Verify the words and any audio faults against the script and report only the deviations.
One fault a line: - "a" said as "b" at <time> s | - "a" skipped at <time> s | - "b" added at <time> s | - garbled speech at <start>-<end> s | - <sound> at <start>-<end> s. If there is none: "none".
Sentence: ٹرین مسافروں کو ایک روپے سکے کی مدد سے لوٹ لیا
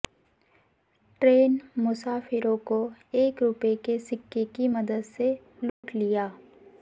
- "کے" added at 3.8 s
- dropout at 5.7-5.8 s